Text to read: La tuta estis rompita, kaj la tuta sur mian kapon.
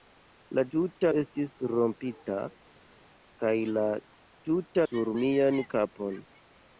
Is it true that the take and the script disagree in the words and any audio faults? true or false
false